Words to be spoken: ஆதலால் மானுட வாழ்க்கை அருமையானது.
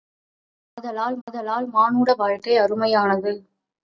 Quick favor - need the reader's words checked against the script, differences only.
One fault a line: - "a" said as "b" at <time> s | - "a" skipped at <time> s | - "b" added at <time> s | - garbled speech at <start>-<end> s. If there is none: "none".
- "ஆதலால்" added at 1.3 s